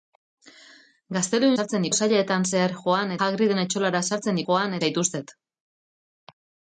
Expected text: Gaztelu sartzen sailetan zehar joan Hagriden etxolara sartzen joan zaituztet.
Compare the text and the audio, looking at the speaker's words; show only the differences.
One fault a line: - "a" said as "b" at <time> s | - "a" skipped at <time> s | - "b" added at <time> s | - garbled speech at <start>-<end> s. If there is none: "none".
none